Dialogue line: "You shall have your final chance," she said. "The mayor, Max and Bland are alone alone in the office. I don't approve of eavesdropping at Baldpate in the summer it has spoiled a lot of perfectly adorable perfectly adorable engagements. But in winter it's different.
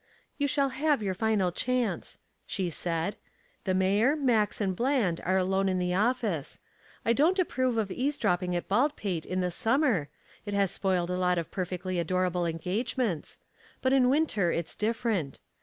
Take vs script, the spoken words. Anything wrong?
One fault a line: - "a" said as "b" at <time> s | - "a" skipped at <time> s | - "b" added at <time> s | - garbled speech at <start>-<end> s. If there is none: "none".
- "alone" skipped at 5.7 s
- "perfectly adorable" skipped at 12.4 s